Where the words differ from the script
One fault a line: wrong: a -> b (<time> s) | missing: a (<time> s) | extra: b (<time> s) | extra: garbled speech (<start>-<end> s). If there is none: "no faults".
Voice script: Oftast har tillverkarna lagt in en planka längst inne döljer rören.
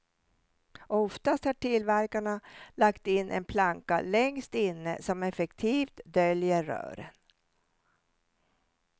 extra: som effektivt (5.0 s)